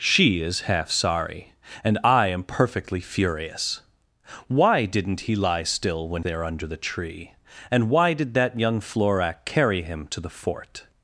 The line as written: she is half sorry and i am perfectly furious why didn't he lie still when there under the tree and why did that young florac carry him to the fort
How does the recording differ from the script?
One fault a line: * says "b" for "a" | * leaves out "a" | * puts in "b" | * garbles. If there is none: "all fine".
all fine